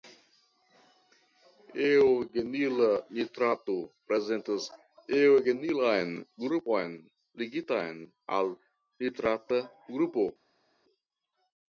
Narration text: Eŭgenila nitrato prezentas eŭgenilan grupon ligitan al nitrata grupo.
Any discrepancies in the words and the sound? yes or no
no